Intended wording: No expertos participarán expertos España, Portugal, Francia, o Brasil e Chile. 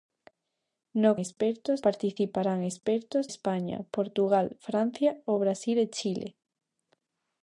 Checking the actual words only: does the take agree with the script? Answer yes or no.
yes